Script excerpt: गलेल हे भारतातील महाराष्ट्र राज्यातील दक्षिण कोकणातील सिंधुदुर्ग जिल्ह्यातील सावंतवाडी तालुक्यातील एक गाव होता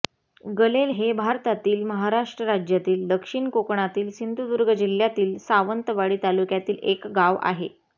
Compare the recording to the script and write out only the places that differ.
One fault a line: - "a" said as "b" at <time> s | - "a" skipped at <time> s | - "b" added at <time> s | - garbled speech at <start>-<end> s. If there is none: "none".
- "होता" said as "आहे" at 7.4 s